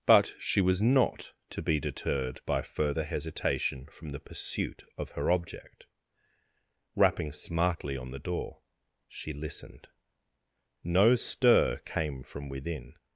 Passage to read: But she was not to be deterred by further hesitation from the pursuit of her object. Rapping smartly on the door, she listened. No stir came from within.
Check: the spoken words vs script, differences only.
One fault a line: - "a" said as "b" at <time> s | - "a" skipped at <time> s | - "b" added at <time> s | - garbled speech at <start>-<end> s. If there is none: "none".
none